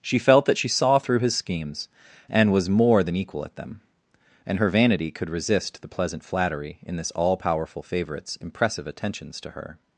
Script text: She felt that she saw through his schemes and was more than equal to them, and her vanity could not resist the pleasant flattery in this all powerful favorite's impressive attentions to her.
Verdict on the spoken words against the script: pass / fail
fail